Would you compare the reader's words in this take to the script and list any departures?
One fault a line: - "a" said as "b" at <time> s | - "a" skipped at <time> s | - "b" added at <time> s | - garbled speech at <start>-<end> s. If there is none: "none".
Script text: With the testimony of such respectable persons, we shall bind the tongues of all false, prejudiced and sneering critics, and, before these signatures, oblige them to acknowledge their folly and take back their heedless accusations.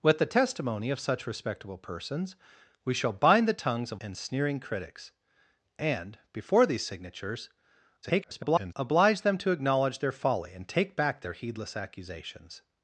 - "all false prejudiced" skipped at 4.0 s
- garbled speech at 8.0-8.7 s